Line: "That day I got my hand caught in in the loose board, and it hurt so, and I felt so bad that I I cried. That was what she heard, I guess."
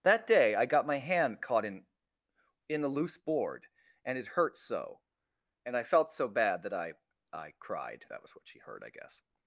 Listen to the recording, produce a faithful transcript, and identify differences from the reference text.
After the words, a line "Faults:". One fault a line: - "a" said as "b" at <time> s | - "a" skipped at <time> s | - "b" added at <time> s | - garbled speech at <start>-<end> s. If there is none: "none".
"That day I got my hand caught in in the loose board, and it hurt so, and I felt so bad that I I cried. That was what she heard, I guess."
Faults:
none